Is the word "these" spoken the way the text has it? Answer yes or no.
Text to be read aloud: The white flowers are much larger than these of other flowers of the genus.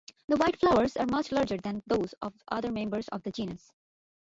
no